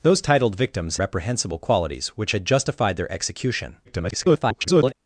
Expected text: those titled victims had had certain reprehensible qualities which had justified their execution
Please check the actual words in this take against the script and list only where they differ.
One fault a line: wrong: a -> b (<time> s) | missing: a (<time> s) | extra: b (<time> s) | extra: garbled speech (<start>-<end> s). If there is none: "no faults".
missing: had had certain (1.0 s)
extra: garbled speech (3.8-4.9 s)